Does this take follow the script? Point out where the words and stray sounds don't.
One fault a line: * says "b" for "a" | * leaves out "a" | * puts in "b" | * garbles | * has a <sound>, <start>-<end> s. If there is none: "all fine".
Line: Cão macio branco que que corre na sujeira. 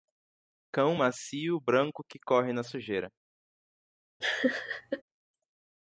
* leaves out "que"
* has a laugh, 4.2-5.0 s